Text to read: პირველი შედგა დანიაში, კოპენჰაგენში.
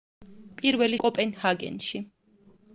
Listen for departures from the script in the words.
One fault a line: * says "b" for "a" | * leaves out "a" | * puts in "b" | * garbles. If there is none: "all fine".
* leaves out "შედგა დანიაში"